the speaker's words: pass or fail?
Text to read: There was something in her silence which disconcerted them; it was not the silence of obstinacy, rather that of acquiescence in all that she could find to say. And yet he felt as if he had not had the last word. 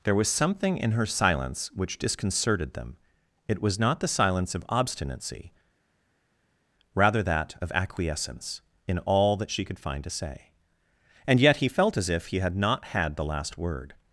pass